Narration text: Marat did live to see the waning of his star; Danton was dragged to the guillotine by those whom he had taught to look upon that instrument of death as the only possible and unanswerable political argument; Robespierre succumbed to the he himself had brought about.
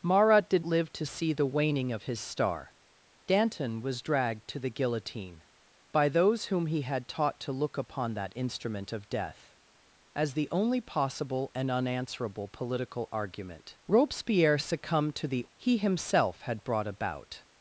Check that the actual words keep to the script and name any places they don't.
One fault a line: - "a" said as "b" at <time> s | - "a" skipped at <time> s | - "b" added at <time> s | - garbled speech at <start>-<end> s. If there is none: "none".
none